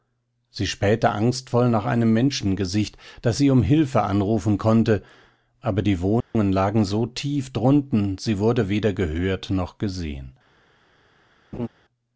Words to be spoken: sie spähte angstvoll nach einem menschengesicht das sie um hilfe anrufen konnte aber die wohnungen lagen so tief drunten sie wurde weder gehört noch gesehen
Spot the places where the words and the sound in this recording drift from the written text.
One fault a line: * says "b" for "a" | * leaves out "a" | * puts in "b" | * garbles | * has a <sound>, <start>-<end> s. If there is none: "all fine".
* has a dropout, 6.2-6.4 s
* has a laugh, 11.5-11.7 s